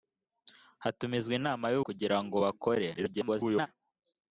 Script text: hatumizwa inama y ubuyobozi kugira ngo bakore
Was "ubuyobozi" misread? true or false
true